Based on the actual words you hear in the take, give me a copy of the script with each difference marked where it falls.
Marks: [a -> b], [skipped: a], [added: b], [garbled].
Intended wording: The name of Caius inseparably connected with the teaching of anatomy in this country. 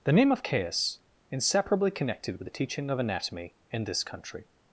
The name of Caius inseparably connected with the teaching of anatomy in this country.